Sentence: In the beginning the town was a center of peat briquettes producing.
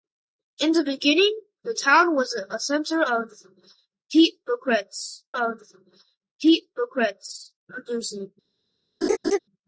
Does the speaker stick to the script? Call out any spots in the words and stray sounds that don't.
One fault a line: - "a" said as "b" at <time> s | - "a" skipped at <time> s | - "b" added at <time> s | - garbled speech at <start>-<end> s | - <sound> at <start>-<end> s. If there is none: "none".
- "of peat briquettes" added at 5.3 s
- laugh at 9.0-9.4 s